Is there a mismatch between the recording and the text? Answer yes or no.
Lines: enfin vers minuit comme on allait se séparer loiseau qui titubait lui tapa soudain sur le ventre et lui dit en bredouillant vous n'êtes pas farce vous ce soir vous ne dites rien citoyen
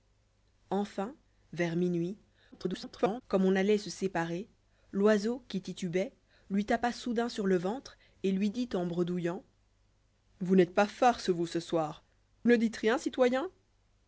yes